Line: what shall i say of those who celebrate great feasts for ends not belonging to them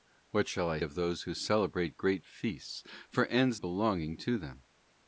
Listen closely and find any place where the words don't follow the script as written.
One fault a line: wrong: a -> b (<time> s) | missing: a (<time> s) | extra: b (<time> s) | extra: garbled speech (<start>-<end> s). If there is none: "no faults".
missing: say (0.8 s)
missing: not (3.6 s)